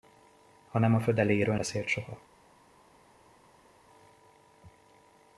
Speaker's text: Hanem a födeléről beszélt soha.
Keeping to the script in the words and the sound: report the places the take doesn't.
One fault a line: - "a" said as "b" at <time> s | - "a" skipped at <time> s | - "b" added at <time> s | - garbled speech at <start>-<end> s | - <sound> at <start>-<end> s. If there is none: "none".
none